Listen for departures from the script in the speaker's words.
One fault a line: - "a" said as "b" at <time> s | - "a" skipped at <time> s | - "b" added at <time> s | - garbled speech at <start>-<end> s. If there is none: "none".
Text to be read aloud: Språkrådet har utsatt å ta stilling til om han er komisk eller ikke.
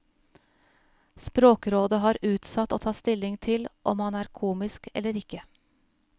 none